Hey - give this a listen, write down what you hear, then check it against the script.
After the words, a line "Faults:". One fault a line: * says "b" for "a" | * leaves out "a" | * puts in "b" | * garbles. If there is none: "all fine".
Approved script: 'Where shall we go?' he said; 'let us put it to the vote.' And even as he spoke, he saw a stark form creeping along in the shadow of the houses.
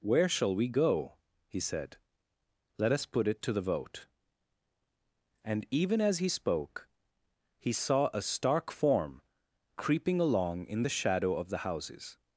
'Where shall we go?' he said; 'let us put it to the vote.' And even as he spoke, he saw a stark form creeping along in the shadow of the houses.
Faults:
all fine